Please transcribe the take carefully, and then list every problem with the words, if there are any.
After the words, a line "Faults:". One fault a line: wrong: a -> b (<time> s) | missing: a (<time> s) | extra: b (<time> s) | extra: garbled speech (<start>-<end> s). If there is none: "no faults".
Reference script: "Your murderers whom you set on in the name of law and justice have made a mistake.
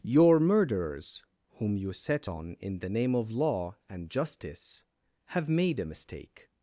"Your murderers whom you set on in the name of law and justice have made a mistake.
Faults:
no faults